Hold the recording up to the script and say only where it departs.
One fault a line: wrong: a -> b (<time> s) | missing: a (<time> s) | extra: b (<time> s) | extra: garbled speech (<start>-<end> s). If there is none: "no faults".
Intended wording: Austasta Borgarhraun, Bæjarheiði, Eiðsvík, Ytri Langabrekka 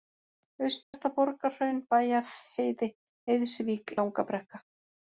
missing: Ytri (3.9 s)